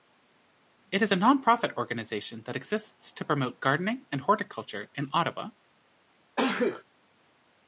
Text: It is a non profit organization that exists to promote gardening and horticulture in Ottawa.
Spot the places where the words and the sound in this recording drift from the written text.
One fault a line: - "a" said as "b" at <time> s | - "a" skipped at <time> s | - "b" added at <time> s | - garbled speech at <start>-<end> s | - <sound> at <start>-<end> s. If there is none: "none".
- sneeze at 6.4-6.8 s